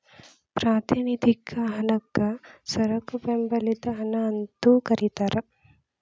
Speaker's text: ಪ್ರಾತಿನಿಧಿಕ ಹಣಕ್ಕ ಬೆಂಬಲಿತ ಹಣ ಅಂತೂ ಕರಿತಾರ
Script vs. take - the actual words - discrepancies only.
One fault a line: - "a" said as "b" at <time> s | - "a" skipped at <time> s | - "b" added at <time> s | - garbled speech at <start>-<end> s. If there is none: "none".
- "ಸರಕು" added at 2.6 s